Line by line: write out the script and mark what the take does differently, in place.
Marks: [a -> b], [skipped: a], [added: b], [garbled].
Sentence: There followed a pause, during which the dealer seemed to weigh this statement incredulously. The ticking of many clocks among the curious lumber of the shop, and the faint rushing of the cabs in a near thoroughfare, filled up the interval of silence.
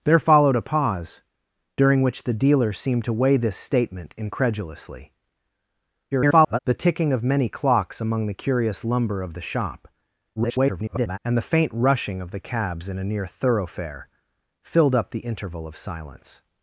There followed a pause, during which the dealer seemed to weigh this statement incredulously. [garbled] The ticking of many clocks among the curious lumber of the shop, [garbled] and the faint rushing of the cabs in a near thoroughfare, filled up the interval of silence.